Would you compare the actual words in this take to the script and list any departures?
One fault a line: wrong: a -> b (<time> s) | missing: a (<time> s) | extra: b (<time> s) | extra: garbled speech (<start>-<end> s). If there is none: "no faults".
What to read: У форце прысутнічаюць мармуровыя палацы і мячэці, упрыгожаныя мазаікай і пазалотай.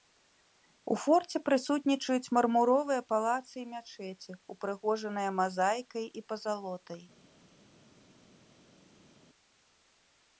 no faults